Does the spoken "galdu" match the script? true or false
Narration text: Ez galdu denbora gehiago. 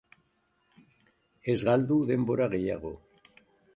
true